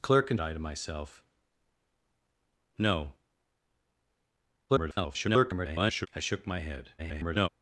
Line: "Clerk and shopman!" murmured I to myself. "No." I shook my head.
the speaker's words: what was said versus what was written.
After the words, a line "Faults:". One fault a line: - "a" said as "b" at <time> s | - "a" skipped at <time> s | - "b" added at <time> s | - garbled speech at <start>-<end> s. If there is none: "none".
"Clerk and I to myself. "No." [garbled] I shook my head. [garbled]
Faults:
- "shopman murmured" skipped at 0.4 s
- garbled speech at 4.7-6.1 s
- garbled speech at 7.0-7.5 s